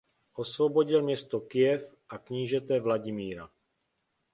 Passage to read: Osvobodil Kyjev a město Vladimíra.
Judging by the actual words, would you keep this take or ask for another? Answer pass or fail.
fail